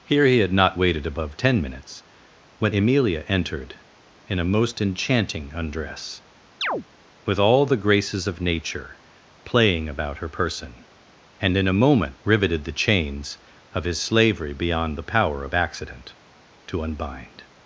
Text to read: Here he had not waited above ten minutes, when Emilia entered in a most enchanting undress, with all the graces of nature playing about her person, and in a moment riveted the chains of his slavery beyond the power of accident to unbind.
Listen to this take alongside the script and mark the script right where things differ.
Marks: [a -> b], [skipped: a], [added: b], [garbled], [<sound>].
Here he had not waited above ten minutes, when Emilia entered in a most enchanting undress, [chirp] with all the graces of nature playing about her person, and in a moment riveted the chains of his slavery beyond the power of accident to unbind.